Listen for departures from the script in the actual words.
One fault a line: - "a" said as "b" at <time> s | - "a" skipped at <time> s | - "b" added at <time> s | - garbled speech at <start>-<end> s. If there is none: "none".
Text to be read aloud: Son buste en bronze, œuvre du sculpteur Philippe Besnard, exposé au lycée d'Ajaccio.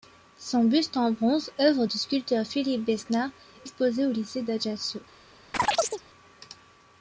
none